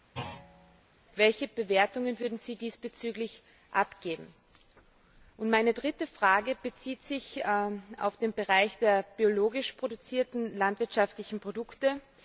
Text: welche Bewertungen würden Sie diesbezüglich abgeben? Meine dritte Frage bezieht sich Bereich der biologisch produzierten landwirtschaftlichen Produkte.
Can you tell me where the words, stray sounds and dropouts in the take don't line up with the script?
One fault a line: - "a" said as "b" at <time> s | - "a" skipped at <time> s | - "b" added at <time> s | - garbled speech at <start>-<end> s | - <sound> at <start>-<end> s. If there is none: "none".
- thud at 0.1-0.8 s
- "auf den" added at 7.5 s